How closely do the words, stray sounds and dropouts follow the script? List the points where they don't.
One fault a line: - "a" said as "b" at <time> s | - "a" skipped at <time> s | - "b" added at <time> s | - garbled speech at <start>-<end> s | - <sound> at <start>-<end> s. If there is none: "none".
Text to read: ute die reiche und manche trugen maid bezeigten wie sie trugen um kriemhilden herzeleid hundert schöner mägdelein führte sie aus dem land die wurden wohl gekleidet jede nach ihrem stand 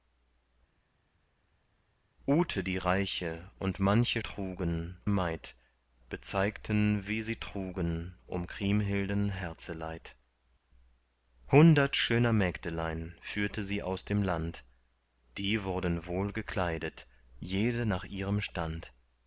none